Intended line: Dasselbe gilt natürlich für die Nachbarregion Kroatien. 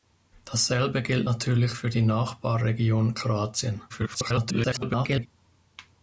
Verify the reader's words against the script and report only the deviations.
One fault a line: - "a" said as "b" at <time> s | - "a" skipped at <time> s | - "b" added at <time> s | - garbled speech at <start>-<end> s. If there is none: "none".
- garbled speech at 3.9-5.3 s